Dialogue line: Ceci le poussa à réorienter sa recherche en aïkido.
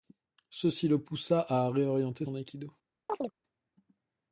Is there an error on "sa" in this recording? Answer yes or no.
yes